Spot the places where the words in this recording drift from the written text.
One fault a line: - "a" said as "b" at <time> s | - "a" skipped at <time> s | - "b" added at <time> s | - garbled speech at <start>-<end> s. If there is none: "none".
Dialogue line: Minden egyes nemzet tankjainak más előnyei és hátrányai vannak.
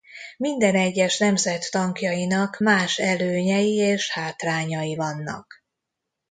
none